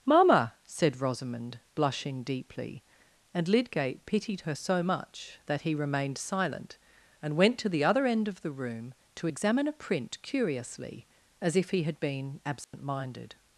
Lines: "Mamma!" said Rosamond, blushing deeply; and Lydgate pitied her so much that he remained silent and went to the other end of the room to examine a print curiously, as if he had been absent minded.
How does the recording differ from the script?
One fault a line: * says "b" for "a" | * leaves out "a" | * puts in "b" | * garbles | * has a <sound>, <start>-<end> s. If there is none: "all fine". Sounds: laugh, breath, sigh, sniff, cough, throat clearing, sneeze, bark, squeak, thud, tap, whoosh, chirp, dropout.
* has a dropout, 12.6-12.7 s